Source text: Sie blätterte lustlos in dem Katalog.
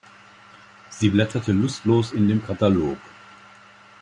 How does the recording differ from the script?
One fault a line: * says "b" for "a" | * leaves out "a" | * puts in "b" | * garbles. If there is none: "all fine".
all fine